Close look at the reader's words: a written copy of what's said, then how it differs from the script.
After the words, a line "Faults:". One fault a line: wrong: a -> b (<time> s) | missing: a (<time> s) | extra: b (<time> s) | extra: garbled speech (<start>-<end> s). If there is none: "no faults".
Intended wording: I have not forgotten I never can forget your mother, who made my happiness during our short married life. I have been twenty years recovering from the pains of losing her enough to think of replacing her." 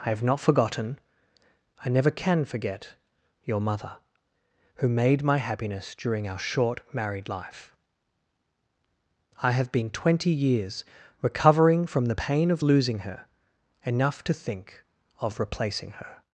I have not forgotten I never can forget your mother, who made my happiness during our short married life. I have been twenty years recovering from the pain of losing her enough to think of replacing her."
Faults:
wrong: pains -> pain (12.1 s)